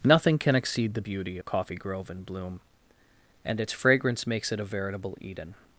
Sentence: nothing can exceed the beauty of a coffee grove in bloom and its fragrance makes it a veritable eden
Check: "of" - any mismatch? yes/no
yes